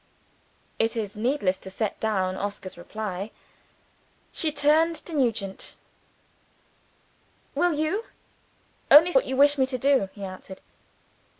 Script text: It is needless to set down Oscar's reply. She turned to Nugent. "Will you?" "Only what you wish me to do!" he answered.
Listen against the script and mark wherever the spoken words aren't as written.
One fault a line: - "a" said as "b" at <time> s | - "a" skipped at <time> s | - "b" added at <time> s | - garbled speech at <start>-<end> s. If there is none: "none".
none